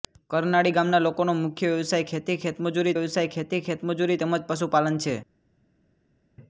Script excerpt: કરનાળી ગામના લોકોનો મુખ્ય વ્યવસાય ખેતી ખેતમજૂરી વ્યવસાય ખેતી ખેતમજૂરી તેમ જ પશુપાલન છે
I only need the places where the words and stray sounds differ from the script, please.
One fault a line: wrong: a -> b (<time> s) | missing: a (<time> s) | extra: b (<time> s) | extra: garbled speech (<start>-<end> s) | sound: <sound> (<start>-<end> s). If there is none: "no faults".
no faults